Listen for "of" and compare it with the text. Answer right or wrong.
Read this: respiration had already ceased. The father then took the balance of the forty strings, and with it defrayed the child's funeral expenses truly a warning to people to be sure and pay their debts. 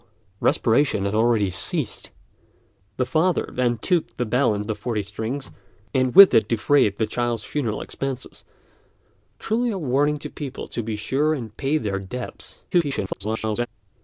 wrong